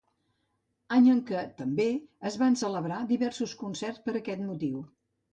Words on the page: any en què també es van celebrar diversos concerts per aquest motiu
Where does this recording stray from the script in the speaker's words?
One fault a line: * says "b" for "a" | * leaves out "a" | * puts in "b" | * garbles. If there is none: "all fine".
all fine